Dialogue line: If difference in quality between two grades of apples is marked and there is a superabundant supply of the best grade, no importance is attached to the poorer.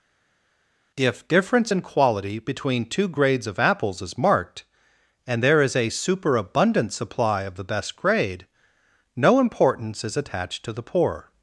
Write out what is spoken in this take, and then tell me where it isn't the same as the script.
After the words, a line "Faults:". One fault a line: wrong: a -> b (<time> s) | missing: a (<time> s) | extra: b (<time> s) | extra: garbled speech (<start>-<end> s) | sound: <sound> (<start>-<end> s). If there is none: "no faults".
If difference in quality between two grades of apples is marked and there is a superabundant supply of the best grade, no importance is attached to the poor.
Faults:
wrong: poorer -> poor (10.8 s)